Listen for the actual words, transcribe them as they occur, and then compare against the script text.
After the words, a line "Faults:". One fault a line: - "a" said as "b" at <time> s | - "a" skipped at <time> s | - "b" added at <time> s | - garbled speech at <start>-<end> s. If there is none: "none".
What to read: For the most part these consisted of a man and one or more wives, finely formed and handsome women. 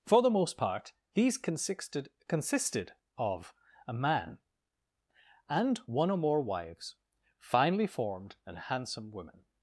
For the most part these consisted consisted of a man and one or more wives, finely formed and handsome women.
Faults:
- "consisted" added at 2.3 s